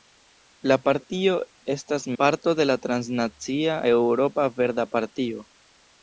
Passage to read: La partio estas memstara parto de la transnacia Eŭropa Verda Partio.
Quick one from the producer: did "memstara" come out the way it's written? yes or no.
no